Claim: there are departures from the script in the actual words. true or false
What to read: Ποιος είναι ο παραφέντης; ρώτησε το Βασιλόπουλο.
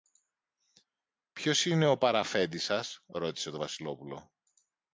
true